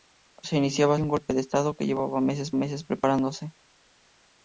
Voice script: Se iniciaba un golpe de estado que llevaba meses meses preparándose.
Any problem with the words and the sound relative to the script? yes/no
no